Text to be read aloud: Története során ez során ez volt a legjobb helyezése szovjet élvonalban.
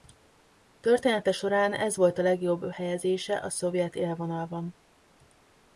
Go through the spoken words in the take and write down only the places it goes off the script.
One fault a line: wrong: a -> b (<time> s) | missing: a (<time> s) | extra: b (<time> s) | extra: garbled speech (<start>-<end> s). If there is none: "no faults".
missing: során ez (2.0 s)
extra: a (3.4 s)